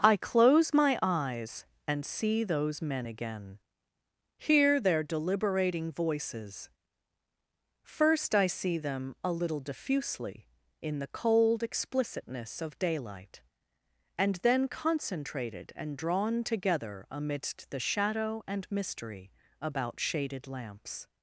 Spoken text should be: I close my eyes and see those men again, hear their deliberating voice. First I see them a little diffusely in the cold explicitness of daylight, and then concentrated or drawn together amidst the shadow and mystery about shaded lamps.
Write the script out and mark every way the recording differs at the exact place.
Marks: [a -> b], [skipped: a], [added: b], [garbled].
I close my eyes and see those men again, hear their deliberating [voice. -> voices] First I see them a little diffusely in the cold explicitness of daylight, and then concentrated [or -> and] drawn together amidst the shadow and mystery about shaded lamps.